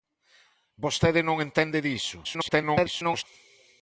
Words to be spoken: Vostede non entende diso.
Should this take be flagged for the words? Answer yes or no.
yes